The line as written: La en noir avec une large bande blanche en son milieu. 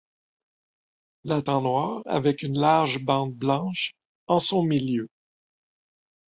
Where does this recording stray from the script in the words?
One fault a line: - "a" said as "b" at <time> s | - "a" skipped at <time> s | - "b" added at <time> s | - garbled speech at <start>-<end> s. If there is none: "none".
none